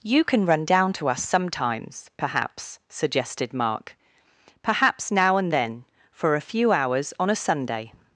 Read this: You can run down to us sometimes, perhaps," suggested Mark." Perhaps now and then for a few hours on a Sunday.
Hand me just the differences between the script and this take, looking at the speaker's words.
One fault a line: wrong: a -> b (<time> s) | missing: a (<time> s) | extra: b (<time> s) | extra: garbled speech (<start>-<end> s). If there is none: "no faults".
no faults